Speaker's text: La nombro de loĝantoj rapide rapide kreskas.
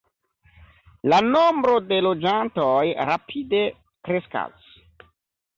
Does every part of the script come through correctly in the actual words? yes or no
no